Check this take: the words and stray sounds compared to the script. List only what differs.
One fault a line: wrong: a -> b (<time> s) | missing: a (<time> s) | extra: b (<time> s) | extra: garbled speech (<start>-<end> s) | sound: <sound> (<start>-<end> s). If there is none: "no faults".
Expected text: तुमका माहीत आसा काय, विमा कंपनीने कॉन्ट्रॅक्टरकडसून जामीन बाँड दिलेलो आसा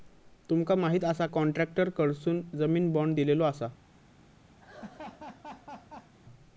missing: काय विमा कंपनीने (1.3 s)
sound: laugh (4.6-6.1 s)